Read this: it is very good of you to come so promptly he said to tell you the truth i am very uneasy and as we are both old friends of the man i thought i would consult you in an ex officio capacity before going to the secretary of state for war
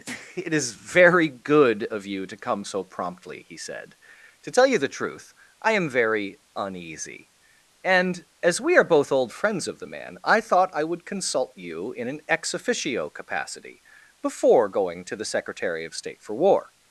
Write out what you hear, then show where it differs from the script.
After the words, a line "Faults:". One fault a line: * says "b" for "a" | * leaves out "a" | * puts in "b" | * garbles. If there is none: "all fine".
it is very good of you to come so promptly he said to tell you the truth i am very uneasy and as we are both old friends of the man i thought i would consult you in an ex officio capacity before going to the secretary of state for war
Faults:
all fine